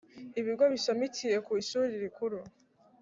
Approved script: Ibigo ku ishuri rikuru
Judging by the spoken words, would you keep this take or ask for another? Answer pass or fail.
fail